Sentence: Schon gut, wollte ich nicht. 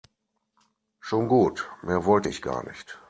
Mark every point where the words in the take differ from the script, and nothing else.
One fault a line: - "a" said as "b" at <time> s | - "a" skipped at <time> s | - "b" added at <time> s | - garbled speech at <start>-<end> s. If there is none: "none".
- "mehr" added at 1.8 s
- "gar" added at 2.4 s